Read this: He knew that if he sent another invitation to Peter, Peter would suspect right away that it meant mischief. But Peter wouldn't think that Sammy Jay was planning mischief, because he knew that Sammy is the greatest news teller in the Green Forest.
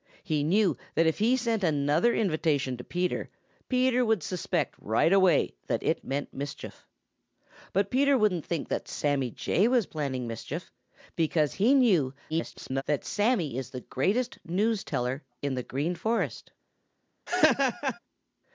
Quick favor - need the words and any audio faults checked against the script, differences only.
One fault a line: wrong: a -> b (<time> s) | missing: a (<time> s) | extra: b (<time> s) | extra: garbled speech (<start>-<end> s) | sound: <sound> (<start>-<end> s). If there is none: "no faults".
extra: garbled speech (12.3-12.8 s)
sound: laugh (17.3-18.0 s)